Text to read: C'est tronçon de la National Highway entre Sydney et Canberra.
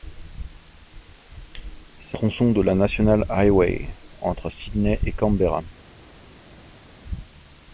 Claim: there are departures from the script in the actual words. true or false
false